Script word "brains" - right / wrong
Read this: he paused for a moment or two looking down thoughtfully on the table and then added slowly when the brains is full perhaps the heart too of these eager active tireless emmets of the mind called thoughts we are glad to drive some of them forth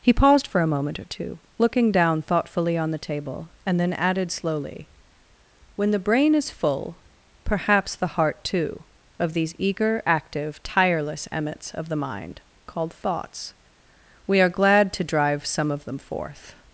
wrong